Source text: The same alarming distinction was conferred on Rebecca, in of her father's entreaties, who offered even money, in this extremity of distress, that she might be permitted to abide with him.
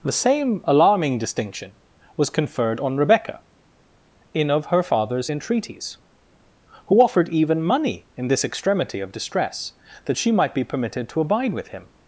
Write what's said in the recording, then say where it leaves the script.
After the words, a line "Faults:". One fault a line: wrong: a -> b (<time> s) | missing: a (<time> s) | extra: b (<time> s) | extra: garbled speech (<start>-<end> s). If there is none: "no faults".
The same alarming distinction was conferred on Rebecca, in of her father's entreaties, who offered even money, in this extremity of distress, that she might be permitted to abide with him.
Faults:
no faults